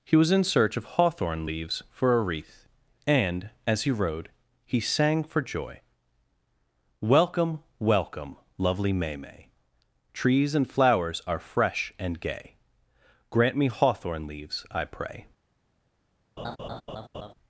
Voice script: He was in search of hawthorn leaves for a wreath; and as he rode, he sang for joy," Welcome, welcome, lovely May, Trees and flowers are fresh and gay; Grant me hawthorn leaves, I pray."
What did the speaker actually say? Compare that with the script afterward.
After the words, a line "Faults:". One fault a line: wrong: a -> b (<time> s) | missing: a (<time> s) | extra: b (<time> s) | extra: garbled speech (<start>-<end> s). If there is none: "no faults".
He was in search of hawthorn leaves for a wreath; and as he rode, he sang for joy," Welcome, welcome, lovely May May, Trees and flowers are fresh and gay; Grant me hawthorn leaves, I pray."
Faults:
extra: May (9.2 s)